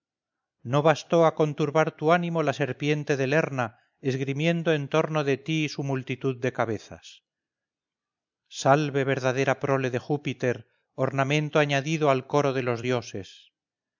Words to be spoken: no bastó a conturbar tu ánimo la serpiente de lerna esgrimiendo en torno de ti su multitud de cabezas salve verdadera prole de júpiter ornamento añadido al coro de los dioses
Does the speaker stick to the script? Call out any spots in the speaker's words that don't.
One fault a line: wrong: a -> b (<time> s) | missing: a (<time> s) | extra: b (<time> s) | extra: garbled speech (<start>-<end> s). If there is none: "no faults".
no faults